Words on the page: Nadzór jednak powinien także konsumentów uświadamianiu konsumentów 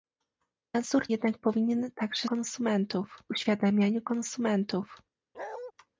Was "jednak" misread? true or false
false